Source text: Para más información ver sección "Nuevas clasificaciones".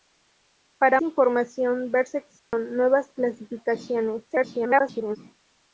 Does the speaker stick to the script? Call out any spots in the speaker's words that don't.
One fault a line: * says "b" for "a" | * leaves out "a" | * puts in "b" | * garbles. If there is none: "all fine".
* leaves out "más"
* garbles